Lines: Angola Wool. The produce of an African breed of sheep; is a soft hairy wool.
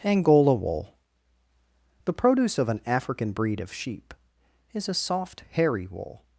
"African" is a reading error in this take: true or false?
false